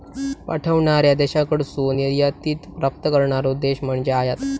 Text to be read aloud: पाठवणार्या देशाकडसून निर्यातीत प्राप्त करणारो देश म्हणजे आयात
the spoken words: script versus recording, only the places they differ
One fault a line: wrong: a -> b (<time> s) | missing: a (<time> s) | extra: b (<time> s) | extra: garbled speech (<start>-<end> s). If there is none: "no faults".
no faults